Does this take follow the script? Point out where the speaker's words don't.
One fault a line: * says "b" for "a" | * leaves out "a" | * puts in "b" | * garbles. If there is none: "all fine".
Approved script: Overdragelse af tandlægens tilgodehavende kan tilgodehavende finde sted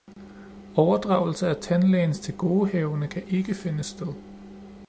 * says "ikke" for "tilgodehavende"